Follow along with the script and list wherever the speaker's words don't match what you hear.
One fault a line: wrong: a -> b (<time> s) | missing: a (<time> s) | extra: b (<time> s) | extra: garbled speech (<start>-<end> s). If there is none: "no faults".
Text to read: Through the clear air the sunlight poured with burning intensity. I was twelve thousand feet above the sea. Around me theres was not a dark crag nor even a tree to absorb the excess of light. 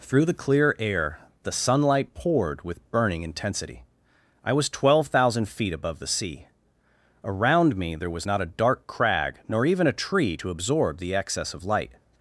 wrong: theres -> there (8.0 s)